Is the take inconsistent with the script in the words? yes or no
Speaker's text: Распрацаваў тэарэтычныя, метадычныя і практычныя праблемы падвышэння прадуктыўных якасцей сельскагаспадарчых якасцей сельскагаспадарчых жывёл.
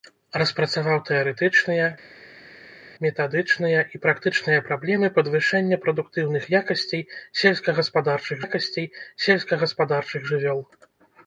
no